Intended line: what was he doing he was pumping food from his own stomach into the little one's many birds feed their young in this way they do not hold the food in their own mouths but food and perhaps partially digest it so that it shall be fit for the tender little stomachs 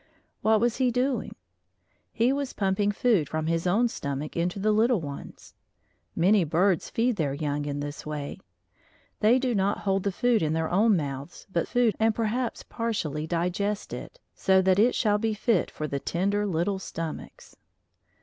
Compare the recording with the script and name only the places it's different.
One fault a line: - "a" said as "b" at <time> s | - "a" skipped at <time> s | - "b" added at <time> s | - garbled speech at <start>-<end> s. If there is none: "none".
none